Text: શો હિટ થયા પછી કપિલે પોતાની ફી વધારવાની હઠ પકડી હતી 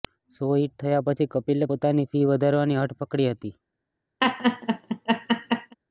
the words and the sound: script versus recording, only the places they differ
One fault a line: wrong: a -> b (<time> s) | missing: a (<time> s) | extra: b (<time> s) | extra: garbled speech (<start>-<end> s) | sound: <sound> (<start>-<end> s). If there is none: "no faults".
sound: laugh (4.2-5.8 s)